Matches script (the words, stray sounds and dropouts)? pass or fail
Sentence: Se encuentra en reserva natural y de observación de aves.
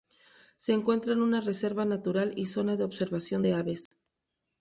fail